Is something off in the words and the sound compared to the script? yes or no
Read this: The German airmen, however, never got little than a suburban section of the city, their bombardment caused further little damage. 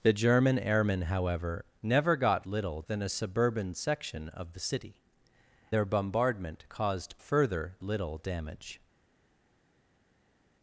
no